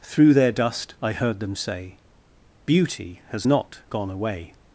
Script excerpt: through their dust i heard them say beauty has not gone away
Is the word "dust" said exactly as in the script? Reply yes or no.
yes